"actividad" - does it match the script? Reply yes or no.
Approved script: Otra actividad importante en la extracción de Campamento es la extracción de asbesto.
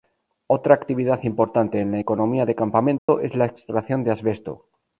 yes